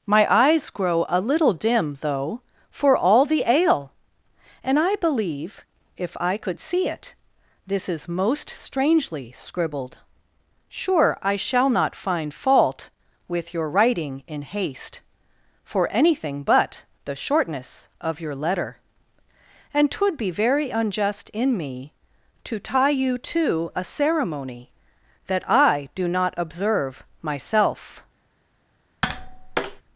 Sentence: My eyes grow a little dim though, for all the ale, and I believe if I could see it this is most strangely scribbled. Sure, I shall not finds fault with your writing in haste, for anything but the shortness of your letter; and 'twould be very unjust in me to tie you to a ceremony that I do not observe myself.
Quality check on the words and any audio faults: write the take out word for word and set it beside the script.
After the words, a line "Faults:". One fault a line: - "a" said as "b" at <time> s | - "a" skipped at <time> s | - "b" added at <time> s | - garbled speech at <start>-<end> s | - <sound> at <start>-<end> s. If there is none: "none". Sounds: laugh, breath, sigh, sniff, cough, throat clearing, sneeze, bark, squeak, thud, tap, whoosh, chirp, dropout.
My eyes grow a little dim though, for all the ale, and I believe if I could see it this is most strangely scribbled. Sure, I shall not find fault with your writing in haste, for anything but the shortness of your letter; and 'twould be very unjust in me to tie you to a ceremony that I do not observe myself.
Faults:
- "finds" said as "find" at 11.9 s
- tap at 29.0-29.8 s